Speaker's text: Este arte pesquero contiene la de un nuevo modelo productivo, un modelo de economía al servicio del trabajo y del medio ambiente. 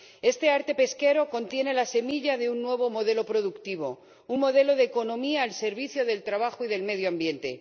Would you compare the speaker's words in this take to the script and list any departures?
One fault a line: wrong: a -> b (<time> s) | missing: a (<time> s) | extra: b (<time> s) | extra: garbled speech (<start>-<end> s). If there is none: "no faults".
extra: semilla (1.9 s)